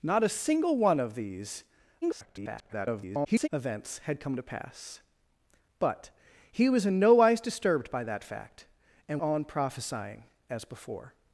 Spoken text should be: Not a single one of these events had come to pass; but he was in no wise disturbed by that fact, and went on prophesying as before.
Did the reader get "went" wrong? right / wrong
wrong